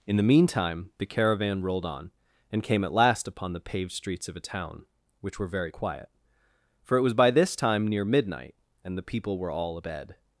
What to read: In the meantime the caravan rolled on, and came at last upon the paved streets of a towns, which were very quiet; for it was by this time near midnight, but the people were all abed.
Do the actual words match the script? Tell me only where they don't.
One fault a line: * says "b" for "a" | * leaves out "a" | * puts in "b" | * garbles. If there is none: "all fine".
* says "town" for "towns"
* says "and" for "but"